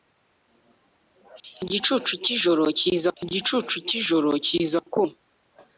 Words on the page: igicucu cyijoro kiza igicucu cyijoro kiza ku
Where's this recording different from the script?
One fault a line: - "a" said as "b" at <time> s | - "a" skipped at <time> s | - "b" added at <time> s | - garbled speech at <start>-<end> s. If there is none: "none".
none